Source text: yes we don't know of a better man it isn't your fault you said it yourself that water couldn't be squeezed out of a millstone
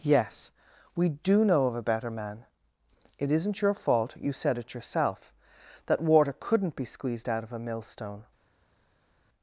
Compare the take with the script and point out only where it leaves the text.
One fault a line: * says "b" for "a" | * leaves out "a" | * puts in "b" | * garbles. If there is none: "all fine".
* says "do" for "don't"